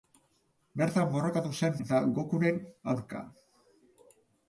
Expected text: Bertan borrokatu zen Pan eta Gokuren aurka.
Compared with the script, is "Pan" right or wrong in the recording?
wrong